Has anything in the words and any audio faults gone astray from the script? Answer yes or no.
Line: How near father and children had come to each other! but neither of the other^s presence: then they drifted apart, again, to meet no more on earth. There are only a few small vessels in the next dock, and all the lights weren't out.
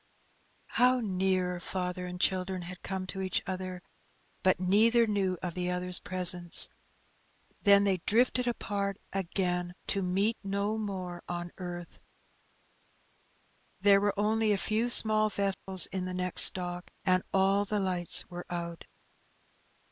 yes